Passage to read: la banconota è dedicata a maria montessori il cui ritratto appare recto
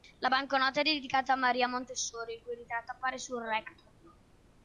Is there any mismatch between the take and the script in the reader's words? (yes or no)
yes